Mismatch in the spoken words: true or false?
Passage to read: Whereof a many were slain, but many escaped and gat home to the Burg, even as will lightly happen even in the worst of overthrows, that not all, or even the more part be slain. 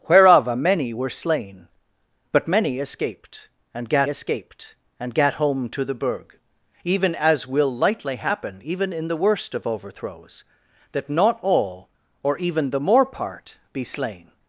true